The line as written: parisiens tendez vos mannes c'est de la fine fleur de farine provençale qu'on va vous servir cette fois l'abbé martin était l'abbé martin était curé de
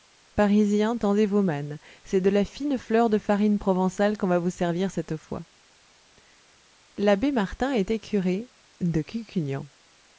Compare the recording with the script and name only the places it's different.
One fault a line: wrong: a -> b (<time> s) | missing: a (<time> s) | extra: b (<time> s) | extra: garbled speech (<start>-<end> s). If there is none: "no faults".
missing: l'abbé martin était (8.0 s)